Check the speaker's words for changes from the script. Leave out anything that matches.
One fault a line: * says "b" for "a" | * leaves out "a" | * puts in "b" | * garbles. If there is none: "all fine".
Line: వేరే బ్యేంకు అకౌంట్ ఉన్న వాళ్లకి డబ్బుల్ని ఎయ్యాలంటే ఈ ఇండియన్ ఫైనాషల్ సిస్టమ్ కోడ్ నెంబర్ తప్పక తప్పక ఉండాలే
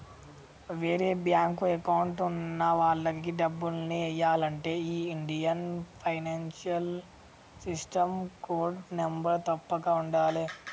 * leaves out "తప్పక"